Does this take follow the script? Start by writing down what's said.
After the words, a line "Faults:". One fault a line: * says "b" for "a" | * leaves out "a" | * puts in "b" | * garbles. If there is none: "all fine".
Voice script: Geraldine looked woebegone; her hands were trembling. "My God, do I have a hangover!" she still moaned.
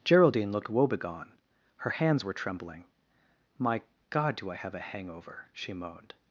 Geraldine looked woebegone; her hands were trembling. "My God, do I have a hangover!" she moaned.
Faults:
* leaves out "still"